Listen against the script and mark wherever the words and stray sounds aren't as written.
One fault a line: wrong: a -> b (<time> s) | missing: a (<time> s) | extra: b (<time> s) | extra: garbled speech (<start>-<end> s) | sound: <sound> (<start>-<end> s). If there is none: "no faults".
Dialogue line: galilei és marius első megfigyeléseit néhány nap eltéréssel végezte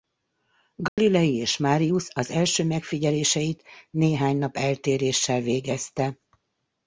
sound: dropout (0.9-1.0 s)
extra: az (2.1 s)